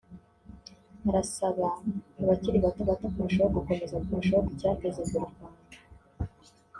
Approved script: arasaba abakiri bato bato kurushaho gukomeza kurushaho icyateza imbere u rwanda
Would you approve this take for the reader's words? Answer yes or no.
yes